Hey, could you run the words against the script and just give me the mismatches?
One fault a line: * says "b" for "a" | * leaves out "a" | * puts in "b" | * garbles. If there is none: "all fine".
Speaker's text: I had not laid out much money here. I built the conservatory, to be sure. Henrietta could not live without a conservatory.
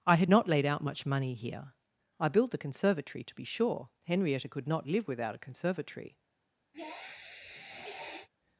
all fine